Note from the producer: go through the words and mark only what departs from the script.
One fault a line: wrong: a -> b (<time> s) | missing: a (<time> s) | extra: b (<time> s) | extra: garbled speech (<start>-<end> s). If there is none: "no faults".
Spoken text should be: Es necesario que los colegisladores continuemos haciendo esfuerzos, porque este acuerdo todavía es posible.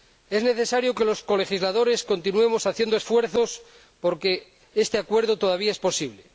no faults